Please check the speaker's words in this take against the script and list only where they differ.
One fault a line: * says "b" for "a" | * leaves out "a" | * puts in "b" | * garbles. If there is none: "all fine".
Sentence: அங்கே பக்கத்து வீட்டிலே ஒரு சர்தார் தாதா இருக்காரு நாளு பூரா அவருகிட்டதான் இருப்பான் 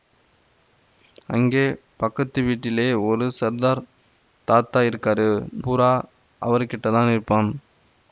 * leaves out "நாளு"